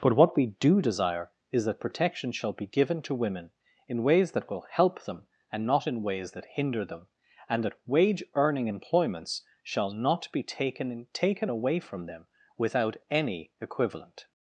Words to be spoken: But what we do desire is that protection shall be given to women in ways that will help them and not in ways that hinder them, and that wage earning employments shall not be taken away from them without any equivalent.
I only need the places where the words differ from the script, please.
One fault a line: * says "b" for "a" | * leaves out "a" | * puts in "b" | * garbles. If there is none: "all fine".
* puts in "taken"